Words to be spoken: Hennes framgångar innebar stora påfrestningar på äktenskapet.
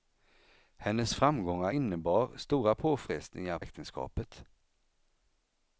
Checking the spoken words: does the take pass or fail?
fail